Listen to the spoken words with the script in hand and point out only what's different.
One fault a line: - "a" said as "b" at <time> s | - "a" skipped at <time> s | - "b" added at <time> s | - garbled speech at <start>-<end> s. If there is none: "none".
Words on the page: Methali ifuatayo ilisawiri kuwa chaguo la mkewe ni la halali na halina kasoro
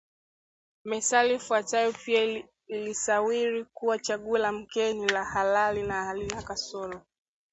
- "pia" added at 1.9 s